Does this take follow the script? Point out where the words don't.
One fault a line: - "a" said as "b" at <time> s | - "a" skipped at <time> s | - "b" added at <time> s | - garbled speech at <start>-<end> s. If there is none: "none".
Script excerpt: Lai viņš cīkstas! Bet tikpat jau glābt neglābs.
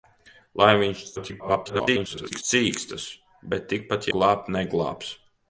- garbled speech at 1.2-2.4 s
- "jau" skipped at 4.1 s